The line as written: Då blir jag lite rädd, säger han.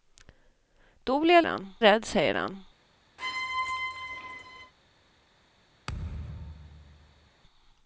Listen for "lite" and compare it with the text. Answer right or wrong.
wrong